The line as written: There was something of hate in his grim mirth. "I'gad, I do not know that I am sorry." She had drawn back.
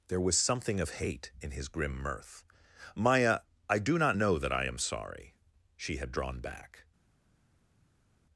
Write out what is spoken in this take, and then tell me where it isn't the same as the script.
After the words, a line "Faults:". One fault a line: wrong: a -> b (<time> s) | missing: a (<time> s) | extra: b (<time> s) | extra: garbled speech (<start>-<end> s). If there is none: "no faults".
There was something of hate in his grim mirth. "Maya, I do not know that I am sorry." She had drawn back.
Faults:
wrong: I'gad -> Maya (3.0 s)